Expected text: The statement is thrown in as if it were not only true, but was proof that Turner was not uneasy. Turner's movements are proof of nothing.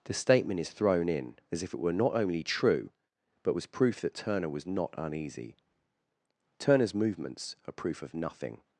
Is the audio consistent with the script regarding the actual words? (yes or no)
yes